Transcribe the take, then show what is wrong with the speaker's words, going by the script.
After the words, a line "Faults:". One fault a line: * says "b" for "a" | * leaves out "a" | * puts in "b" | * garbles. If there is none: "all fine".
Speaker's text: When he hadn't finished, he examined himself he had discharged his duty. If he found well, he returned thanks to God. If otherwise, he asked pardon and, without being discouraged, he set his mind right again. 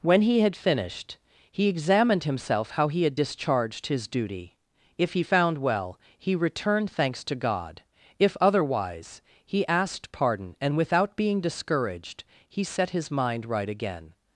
When he had finished, he examined himself how he had discharged his duty. If he found well, he returned thanks to God. If otherwise, he asked pardon and, without being discouraged, he set his mind right again.
Faults:
* says "had" for "hadn't"
* puts in "how"